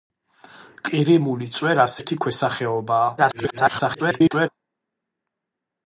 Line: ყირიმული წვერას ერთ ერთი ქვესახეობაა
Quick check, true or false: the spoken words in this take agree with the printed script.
false